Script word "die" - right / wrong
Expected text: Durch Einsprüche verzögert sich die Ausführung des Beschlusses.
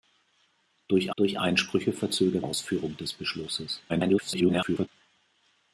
wrong